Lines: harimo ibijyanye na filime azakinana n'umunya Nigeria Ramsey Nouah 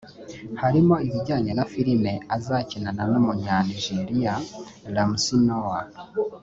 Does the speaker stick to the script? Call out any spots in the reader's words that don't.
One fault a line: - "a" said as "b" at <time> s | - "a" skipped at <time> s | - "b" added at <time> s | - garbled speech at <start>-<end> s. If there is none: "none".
none